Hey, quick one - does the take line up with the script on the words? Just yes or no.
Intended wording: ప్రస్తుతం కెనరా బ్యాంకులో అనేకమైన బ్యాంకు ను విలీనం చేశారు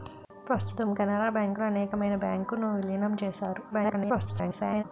no